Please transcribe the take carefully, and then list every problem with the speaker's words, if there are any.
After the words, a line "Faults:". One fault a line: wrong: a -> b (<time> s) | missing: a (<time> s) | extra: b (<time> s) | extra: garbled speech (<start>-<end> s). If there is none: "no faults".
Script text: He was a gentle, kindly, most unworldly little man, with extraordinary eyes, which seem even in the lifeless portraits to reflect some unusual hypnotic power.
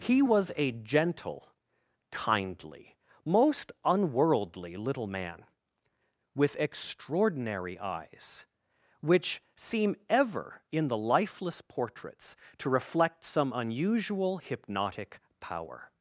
He was a gentle, kindly, most unworldly little man, with extraordinary eyes, which seem ever in the lifeless portraits to reflect some unusual hypnotic power.
Faults:
wrong: even -> ever (10.1 s)